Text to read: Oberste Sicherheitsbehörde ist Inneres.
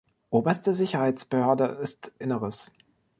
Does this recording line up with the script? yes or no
yes